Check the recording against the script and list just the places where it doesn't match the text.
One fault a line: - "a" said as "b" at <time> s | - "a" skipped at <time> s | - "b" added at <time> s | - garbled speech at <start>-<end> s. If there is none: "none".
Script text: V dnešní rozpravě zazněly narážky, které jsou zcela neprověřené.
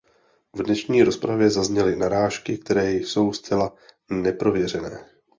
none